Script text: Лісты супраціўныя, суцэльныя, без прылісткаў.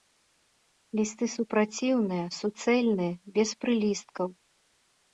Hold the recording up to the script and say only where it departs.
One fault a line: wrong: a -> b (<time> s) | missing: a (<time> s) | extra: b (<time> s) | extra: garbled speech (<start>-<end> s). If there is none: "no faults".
no faults